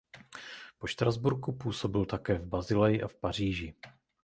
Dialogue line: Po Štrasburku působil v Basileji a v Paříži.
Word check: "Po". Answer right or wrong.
right